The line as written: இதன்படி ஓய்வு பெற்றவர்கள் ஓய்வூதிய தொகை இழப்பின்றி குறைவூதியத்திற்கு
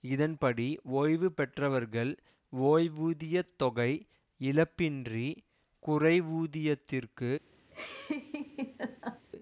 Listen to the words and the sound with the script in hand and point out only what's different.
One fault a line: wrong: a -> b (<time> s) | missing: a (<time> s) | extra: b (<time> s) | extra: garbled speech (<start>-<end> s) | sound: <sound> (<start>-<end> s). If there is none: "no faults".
sound: laugh (7.7-9.3 s)